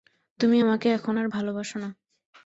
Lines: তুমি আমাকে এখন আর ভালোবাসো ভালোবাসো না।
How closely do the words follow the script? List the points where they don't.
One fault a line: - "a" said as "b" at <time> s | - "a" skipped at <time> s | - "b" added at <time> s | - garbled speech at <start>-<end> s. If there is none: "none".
- "ভালোবাসো" skipped at 1.8 s